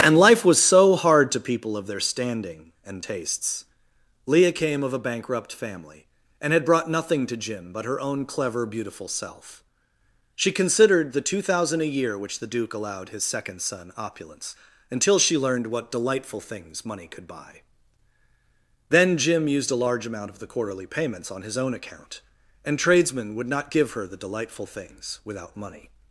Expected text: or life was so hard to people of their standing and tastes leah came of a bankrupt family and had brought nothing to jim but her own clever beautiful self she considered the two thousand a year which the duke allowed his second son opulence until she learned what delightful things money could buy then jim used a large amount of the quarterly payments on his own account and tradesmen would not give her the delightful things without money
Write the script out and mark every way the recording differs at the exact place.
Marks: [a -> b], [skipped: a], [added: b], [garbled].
[or -> and] life was so hard to people of their standing and tastes leah came of a bankrupt family and had brought nothing to jim but her own clever beautiful self she considered the two thousand a year which the duke allowed his second son opulence until she learned what delightful things money could buy then jim used a large amount of the quarterly payments on his own account and tradesmen would not give her the delightful things without money